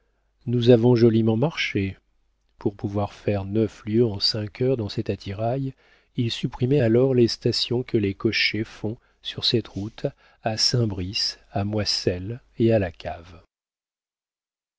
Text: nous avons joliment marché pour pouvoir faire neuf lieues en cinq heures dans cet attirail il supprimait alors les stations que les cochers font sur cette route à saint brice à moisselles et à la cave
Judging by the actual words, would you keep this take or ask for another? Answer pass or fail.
pass